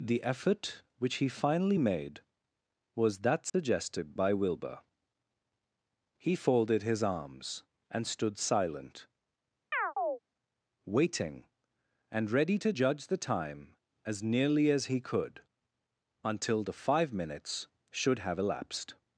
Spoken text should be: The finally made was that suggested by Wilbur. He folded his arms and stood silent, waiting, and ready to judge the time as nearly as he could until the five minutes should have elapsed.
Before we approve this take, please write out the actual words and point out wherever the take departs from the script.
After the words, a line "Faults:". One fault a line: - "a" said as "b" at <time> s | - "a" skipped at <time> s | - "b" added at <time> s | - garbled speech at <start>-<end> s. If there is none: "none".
The effort which he finally made was that suggested by Wilbur. He folded his arms and stood silent, waiting, and ready to judge the time as nearly as he could until the five minutes should have elapsed.
Faults:
- "effort which he" added at 0.2 s